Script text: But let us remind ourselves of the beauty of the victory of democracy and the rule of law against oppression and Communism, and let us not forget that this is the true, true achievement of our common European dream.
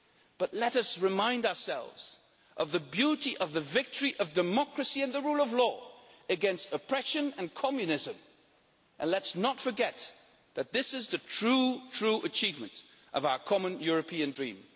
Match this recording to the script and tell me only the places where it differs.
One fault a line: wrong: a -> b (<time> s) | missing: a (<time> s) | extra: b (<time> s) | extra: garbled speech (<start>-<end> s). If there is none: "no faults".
no faults